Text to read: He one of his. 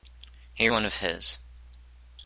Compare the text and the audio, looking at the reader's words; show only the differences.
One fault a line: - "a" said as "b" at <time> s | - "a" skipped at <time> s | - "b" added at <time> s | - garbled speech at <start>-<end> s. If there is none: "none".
none